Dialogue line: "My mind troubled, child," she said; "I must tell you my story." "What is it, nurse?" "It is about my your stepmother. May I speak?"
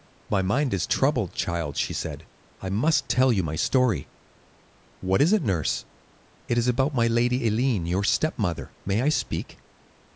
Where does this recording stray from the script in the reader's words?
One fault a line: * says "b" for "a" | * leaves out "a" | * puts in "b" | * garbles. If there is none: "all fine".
* puts in "is"
* puts in "lady Eileen"